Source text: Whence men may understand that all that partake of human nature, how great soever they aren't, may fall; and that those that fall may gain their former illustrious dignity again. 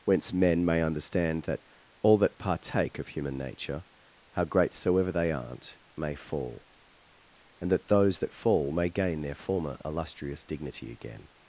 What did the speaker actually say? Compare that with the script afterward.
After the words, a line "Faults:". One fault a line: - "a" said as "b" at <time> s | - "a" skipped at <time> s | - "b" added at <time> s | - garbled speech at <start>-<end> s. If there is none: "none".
Whence men may understand that all that partake of human nature, how great soever they aren't, may fall; and that those that fall may gain their former illustrious dignity again.
Faults:
none